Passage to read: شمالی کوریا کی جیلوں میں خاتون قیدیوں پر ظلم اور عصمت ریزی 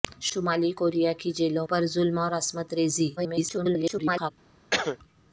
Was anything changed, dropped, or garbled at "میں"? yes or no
yes